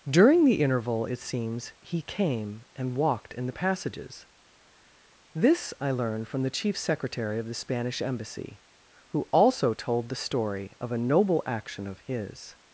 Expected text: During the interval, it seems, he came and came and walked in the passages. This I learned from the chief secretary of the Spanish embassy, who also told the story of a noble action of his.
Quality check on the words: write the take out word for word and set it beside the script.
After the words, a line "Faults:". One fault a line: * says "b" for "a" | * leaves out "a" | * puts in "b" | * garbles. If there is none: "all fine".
During the interval, it seems, he came and walked in the passages. This I learned from the chief secretary of the Spanish embassy, who also told the story of a noble action of his.
Faults:
* leaves out "came and"